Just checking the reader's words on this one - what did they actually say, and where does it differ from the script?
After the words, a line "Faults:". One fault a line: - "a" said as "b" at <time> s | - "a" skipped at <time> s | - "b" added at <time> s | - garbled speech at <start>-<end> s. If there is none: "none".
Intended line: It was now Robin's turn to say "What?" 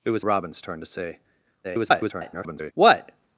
It was Robin's turn to say [garbled] "What?"
Faults:
- "now" skipped at 0.2 s
- garbled speech at 1.6-2.7 s